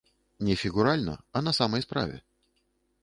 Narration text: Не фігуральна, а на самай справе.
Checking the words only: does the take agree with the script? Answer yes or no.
yes